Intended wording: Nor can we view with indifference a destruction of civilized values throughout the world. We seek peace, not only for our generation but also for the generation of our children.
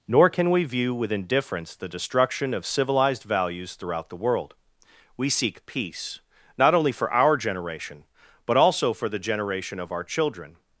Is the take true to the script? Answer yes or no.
no